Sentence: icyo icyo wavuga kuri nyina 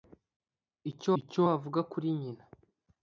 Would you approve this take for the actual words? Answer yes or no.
yes